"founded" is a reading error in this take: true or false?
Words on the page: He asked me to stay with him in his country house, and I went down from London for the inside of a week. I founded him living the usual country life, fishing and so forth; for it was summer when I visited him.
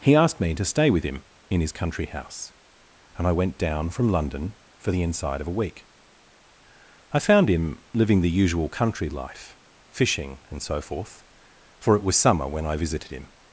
true